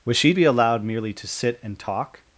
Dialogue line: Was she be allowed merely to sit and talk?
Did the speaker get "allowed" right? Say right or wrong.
right